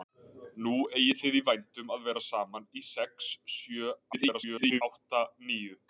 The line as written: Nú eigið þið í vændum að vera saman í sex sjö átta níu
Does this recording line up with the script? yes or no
no